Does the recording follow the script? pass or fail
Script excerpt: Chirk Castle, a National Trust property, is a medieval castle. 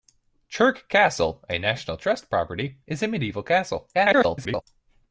fail